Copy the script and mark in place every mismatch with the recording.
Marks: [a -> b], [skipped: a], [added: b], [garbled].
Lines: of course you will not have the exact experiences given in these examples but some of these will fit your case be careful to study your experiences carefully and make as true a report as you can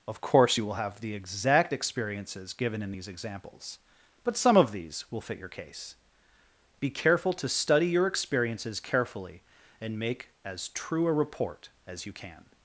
of course you will [skipped: not] have the exact experiences given in these examples but some of these will fit your case be careful to study your experiences carefully and make as true a report as you can